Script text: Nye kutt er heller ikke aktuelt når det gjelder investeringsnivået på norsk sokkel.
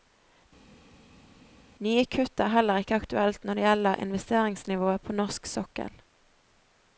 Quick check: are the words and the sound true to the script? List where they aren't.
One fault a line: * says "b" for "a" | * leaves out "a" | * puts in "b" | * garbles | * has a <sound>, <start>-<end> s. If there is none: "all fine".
all fine